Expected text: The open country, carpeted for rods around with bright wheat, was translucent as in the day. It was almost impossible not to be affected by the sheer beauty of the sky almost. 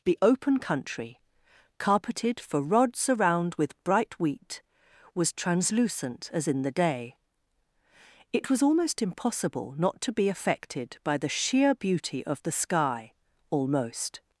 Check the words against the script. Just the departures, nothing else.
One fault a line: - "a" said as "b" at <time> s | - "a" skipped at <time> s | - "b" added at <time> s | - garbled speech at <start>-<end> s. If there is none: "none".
none